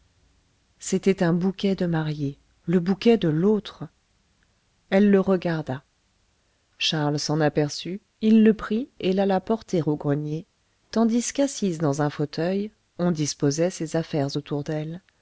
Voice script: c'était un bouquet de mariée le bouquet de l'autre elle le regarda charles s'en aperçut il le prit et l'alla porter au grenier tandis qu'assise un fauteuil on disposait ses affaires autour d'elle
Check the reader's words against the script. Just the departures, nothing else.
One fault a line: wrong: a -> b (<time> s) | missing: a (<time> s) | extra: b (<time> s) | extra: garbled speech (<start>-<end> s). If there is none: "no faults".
extra: dans (11.8 s)